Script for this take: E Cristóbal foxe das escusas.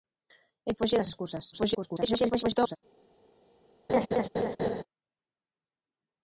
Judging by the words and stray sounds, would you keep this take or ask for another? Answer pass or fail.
fail